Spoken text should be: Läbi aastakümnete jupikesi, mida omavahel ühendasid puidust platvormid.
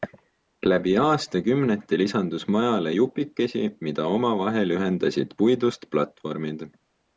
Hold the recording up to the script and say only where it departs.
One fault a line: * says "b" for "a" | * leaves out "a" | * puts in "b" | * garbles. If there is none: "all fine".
* puts in "lisandus majale"